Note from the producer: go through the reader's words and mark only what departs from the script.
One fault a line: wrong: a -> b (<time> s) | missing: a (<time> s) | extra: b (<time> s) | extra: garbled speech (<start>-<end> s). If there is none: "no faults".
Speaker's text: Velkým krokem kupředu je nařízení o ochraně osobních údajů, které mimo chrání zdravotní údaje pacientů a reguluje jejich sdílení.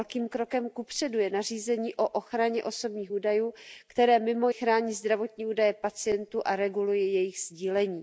no faults